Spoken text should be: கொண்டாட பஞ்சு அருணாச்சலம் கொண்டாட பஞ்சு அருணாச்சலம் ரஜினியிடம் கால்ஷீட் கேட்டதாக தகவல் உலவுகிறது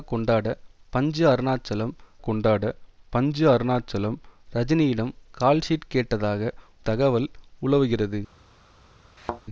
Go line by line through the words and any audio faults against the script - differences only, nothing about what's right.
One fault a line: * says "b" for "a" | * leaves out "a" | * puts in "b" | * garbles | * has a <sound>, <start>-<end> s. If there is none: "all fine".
* has a thud, 9.2-9.4 s